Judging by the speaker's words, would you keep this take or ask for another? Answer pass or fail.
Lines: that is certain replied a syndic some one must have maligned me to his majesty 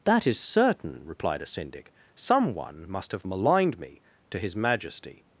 pass